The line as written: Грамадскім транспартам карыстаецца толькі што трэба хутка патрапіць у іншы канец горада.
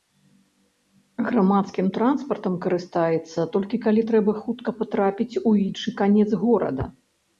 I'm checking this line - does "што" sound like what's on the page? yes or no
no